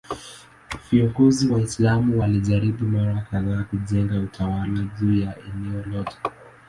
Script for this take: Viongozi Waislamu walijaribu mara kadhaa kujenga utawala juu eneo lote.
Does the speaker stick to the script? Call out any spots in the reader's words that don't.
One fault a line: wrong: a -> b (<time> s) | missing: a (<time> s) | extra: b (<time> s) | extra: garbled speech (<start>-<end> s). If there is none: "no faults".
extra: ya (5.2 s)